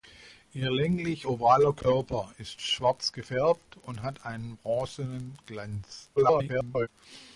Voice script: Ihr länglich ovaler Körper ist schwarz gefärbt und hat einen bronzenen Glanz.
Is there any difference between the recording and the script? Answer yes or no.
yes